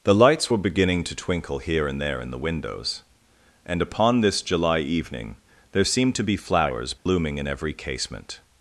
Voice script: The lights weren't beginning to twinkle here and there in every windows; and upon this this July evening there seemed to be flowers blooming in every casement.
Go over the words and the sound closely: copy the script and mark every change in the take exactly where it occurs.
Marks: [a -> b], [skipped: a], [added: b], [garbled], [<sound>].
The lights [weren't -> were] beginning to twinkle here and there in [every -> the] windows; and upon this [skipped: this] July evening there seemed to be flowers blooming [dropout] in every casement.